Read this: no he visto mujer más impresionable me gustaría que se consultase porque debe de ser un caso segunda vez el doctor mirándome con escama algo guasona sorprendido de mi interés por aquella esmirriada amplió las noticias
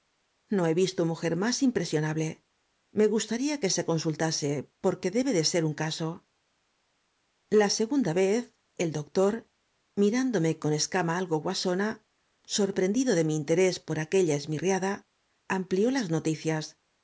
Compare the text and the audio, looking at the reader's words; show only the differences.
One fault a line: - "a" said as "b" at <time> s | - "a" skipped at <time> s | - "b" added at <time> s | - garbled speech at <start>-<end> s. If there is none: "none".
- "la" added at 7.5 s